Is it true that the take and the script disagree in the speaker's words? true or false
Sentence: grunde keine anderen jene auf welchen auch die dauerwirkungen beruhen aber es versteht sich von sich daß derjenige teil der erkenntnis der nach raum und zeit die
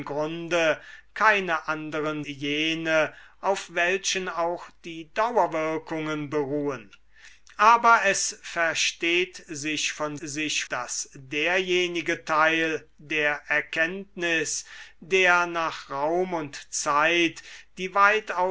false